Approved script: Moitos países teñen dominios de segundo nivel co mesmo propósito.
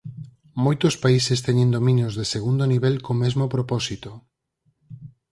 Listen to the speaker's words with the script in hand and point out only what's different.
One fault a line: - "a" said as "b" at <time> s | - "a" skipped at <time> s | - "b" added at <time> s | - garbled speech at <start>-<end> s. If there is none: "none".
none